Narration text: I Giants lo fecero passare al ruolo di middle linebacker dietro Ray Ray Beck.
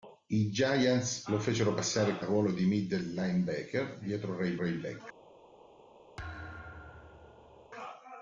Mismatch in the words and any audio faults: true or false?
true